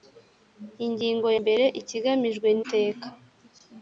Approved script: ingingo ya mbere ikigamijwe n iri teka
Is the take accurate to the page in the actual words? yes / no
no